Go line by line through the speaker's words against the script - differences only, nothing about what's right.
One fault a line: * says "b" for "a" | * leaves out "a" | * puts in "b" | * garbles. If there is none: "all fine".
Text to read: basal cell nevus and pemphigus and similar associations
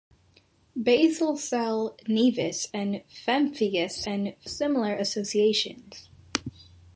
all fine